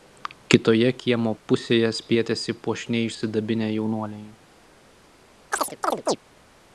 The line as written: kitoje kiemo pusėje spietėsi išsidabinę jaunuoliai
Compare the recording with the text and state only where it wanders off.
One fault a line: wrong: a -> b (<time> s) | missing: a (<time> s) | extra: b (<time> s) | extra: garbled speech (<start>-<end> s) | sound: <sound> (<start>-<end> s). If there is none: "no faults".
extra: puošniai (2.7 s)
sound: chirp (5.5-6.2 s)